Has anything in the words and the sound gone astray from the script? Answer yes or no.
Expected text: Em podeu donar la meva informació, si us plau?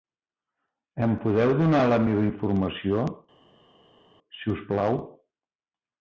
no